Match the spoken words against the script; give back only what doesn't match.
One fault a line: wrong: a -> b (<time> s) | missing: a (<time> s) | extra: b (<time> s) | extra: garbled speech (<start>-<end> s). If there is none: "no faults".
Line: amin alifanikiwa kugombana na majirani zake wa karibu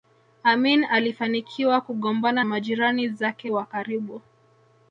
missing: na (2.4 s)